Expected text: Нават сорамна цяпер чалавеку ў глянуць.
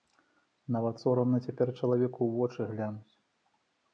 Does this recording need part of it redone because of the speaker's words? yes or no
yes